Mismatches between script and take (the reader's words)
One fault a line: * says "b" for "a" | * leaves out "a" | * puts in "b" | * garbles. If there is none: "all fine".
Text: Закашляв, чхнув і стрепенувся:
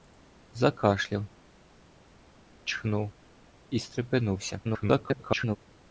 * garbles